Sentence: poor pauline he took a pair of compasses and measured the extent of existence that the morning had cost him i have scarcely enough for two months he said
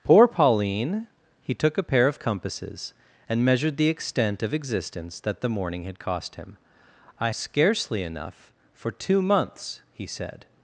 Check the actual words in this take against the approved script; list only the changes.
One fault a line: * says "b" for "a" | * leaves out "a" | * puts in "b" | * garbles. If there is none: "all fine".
* leaves out "have"